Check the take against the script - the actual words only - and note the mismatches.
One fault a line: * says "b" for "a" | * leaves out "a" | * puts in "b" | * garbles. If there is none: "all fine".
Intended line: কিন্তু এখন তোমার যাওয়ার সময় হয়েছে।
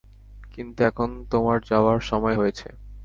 all fine